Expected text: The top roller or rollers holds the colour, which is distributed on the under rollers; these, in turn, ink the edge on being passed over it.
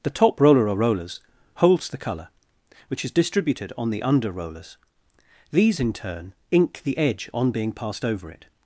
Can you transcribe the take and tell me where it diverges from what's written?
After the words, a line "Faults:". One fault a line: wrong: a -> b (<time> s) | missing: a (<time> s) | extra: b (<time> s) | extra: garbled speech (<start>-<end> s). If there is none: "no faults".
The top roller or rollers holds the colour, which is distributed on the under rollers; these, in turn, ink the edge on being passed over it.
Faults:
no faults